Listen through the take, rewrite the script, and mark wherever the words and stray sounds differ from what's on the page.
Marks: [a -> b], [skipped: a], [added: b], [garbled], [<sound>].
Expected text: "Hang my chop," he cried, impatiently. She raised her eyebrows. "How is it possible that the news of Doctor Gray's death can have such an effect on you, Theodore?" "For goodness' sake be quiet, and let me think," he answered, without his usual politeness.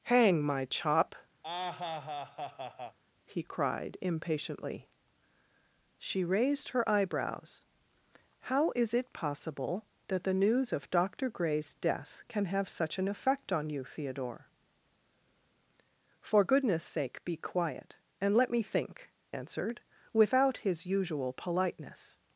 "Hang my chop," [laugh] he cried, impatiently. She raised her eyebrows. "How is it possible that the news of Doctor Gray's death can have such an effect on you, Theodore?" "For goodness' sake be quiet, and let me think," [skipped: he] answered, without his usual politeness.